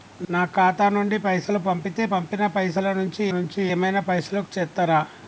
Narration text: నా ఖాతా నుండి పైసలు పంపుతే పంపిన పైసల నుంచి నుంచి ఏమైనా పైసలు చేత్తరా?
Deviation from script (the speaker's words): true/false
false